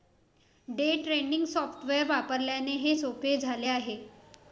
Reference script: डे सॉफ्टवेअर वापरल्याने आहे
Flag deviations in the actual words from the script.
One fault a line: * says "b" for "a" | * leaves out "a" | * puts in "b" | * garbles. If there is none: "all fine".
* puts in "ट्रेडिंग"
* puts in "हे सोपे झाले"